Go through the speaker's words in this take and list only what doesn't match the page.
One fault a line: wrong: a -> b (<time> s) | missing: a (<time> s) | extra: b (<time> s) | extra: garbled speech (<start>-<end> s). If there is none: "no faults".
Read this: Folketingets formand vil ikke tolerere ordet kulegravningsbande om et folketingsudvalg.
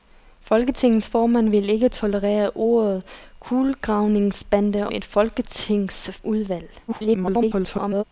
missing: om (4.9 s)
extra: garbled speech (6.9-8.0 s)